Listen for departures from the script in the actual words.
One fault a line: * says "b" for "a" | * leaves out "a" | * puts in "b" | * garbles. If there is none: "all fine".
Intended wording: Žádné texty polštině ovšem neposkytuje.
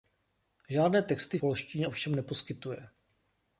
all fine